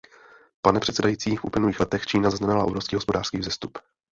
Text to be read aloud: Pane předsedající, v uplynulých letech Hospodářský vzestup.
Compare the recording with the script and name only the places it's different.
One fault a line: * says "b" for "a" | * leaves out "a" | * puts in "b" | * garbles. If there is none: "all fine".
* puts in "Čína zaznamenala obrovský"